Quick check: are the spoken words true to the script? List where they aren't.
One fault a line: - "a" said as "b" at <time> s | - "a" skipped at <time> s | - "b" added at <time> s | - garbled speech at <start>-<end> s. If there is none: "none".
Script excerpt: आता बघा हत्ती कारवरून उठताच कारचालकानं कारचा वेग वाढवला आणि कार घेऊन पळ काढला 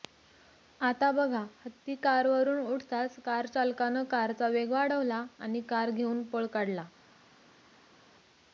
none